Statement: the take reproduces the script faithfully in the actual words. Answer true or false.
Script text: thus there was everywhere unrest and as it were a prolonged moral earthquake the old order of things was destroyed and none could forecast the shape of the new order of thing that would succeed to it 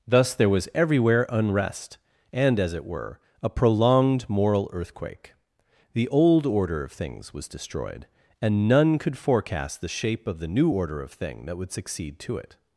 true